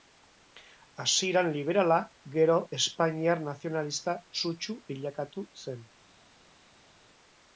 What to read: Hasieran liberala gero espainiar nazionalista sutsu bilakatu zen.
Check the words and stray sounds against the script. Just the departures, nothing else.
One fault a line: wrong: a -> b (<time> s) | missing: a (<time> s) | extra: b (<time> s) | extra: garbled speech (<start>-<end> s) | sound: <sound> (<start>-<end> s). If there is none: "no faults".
no faults